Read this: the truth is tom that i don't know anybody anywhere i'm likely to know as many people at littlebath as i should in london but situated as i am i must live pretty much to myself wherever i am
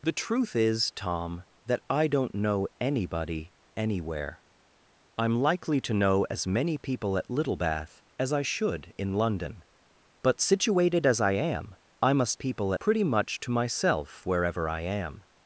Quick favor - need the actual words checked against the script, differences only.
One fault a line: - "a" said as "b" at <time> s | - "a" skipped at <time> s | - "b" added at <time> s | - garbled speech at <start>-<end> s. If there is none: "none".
- "live" said as "people" at 12.4 s